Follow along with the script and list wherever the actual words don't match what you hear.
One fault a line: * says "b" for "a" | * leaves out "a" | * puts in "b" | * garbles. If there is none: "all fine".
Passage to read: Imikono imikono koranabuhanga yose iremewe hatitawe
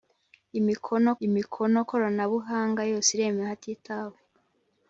all fine